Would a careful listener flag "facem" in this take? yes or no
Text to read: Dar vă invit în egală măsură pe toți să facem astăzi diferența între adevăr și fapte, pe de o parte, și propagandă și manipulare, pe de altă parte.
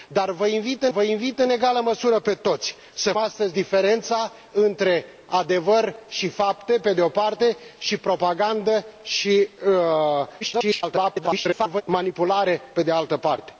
yes